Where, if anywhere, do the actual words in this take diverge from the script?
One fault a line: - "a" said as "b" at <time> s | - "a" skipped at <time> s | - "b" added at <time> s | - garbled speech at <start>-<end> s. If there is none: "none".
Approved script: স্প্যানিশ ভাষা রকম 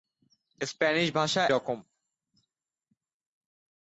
none